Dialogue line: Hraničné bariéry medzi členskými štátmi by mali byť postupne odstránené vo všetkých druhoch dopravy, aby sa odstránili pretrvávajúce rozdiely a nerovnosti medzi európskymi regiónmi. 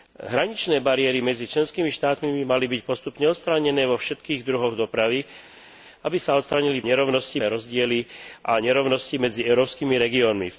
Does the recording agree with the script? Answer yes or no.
no